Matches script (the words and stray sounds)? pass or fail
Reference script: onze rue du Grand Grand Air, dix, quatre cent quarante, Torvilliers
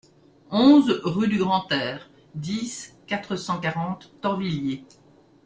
fail